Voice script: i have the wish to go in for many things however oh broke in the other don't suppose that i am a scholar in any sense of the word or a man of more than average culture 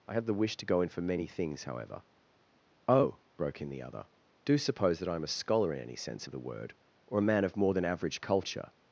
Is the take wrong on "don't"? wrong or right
wrong